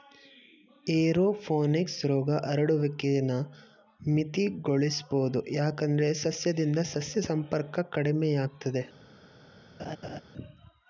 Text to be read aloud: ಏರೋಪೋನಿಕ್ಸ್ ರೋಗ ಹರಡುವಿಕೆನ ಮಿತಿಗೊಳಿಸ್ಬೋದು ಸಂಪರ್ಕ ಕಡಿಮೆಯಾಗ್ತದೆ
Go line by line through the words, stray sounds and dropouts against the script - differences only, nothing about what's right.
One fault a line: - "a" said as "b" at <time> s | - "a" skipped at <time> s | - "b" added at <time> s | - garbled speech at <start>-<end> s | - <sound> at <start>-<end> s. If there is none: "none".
- "ಯಾಕಂದ್ರೆ ಸಸ್ಯದಿಂದ ಸಸ್ಯ" added at 5.5 s
- laugh at 9.8-10.2 s